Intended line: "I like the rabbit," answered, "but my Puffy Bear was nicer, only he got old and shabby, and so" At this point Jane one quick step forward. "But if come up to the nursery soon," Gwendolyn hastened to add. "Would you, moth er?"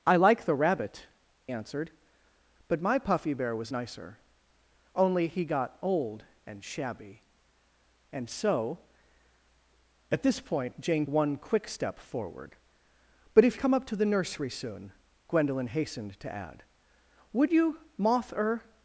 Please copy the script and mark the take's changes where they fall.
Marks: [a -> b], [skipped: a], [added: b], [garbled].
"I like the rabbit," answered, "but my Puffy Bear was nicer, only he got old and shabby, and so" At this point Jane one quick step forward. "But if come up to the nursery soon," Gwendolyn hastened to add. "Would you, moth er?"